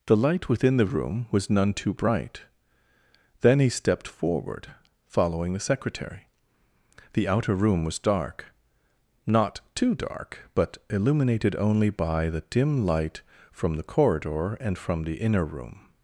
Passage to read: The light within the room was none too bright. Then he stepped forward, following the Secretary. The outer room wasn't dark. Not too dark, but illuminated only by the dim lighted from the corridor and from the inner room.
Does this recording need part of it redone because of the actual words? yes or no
yes